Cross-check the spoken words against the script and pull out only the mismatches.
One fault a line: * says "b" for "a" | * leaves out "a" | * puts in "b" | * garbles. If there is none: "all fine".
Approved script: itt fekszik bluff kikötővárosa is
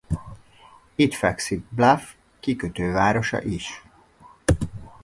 all fine